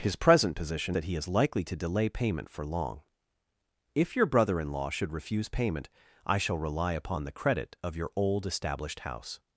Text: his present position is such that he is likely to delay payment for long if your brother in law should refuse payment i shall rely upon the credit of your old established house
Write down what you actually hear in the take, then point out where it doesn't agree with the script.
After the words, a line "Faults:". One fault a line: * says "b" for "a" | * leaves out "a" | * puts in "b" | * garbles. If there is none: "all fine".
his present position that he is likely to delay payment for long if your brother in law should refuse payment i shall rely upon the credit of your old established house
Faults:
* leaves out "is such"